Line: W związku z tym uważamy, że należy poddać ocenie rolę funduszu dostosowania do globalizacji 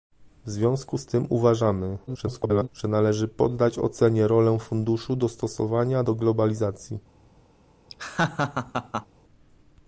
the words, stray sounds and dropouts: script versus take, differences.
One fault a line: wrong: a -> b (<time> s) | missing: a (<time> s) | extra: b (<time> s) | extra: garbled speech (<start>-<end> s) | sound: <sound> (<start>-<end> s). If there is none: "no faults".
extra: garbled speech (2.1-2.7 s)
sound: laugh (7.9-9.1 s)